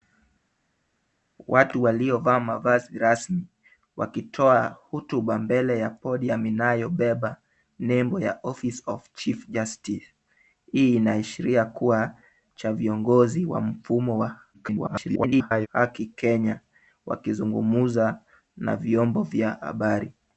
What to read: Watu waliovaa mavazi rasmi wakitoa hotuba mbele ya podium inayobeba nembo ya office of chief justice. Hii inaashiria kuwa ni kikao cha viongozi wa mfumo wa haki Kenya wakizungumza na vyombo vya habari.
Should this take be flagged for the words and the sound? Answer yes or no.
yes